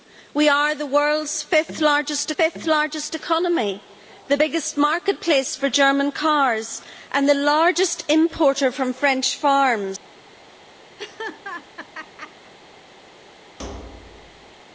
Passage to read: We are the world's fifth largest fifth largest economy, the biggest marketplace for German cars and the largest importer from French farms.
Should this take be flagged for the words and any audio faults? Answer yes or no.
yes